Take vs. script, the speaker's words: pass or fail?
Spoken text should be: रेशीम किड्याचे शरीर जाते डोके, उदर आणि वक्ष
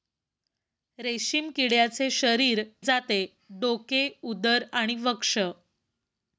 pass